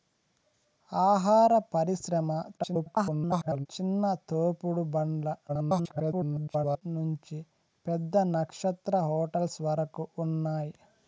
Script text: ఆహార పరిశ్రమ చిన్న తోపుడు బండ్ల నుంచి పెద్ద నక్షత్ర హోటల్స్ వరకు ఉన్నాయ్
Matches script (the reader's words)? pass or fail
fail